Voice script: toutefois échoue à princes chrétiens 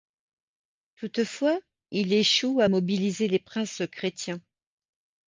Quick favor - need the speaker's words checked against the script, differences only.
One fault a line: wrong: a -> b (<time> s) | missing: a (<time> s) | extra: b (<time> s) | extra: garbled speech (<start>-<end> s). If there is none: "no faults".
extra: il (1.9 s)
extra: mobiliser les (2.7 s)